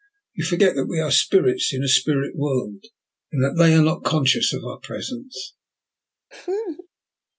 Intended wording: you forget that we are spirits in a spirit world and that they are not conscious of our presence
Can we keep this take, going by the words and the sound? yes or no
no